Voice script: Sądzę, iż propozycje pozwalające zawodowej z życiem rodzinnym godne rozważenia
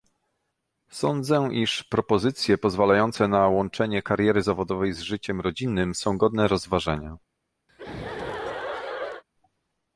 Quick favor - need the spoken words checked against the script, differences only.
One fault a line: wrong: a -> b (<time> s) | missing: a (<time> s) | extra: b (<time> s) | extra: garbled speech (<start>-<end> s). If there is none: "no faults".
extra: na łączenie kariery (3.3 s)
extra: są (5.9 s)